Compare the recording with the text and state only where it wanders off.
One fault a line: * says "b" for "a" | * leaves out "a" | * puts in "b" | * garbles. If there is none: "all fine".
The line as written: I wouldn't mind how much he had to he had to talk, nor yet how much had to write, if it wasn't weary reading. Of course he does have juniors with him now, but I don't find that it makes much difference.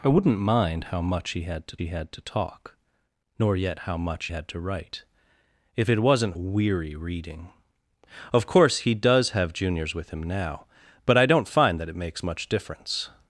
all fine